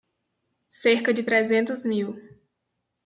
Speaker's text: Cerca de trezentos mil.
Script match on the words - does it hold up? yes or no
yes